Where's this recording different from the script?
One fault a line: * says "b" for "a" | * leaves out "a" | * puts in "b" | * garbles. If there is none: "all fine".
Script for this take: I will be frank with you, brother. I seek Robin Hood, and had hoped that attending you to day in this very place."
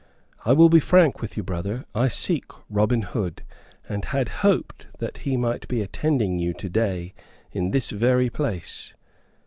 * puts in "he might be"